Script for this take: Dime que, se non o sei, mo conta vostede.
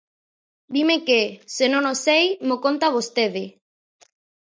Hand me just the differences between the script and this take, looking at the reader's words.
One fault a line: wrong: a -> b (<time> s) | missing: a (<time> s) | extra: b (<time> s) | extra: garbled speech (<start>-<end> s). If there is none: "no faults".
no faults